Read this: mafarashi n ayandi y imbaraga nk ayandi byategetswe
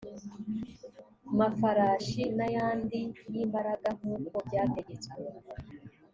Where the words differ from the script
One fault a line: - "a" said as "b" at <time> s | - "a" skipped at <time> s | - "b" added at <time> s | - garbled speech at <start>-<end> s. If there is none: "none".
- "ayandi" said as "uko" at 4.2 s